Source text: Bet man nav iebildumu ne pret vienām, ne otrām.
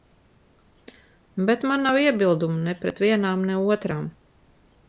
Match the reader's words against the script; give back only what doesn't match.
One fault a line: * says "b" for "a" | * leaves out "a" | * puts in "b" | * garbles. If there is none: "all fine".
all fine